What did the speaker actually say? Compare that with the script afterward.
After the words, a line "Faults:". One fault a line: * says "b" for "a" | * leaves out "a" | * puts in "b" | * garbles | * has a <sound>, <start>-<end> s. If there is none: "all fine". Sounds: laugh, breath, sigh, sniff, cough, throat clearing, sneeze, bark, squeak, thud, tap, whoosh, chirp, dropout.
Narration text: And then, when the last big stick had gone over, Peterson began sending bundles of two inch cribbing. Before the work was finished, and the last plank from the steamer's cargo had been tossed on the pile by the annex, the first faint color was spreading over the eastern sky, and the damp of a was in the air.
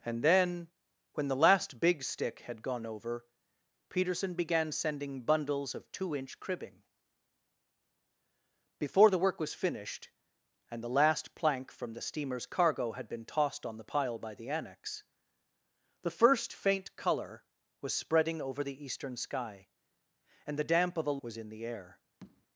And then, when the last big stick had gone over, Peterson began sending bundles of two inch cribbing. Before the work was finished, and the last plank from the steamer's cargo had been tossed on the pile by the annex, the first faint color was spreading over the eastern sky, and the damp of a was in the air.
Faults:
* has a tap, 22.2-22.5 s